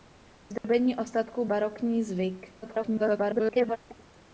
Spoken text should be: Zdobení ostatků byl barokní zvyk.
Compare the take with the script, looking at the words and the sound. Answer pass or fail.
fail